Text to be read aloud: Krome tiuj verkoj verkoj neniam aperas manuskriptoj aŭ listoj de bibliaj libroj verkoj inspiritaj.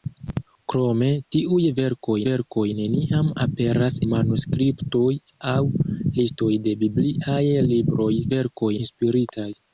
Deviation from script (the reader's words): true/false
false